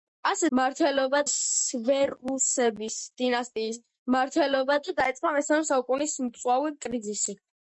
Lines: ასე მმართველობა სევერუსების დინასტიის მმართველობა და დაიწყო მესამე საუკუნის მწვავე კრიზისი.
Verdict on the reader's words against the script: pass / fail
pass